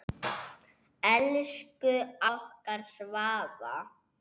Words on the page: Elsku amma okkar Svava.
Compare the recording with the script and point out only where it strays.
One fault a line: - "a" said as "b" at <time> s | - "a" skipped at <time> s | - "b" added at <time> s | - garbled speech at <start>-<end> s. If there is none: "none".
- "amma" skipped at 1.9 s